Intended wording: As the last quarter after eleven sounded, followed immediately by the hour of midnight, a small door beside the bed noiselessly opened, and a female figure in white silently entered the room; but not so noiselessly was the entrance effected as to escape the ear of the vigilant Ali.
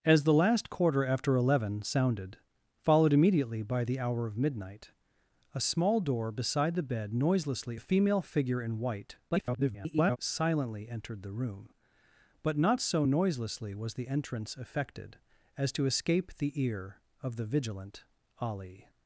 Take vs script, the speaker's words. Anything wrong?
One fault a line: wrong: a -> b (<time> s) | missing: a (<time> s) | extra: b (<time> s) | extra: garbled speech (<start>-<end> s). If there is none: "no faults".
missing: opened and (7.8 s)
extra: garbled speech (9.3-10.2 s)